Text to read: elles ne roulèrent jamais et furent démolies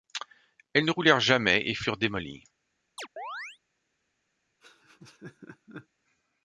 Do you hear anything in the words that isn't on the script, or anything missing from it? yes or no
no